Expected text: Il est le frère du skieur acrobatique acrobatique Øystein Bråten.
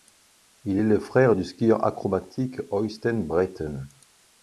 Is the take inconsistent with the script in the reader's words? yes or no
yes